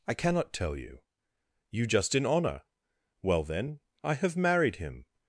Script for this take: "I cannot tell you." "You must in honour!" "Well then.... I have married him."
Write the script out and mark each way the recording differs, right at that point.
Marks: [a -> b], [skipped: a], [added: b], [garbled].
"I cannot tell you." "You [must -> just] in honour!" "Well then.... I have married him."